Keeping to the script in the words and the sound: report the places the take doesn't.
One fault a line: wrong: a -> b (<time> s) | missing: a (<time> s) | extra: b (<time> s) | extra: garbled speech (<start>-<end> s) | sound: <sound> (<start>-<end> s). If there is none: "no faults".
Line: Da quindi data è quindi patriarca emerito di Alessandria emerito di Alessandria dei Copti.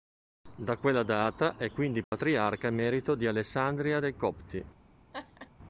wrong: quindi -> quella (0.8 s)
sound: dropout (2.0-2.1 s)
missing: emerito di Alessandria (4.0 s)
sound: laugh (5.1-5.5 s)